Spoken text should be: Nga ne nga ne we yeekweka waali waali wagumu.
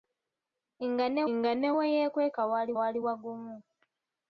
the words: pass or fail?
pass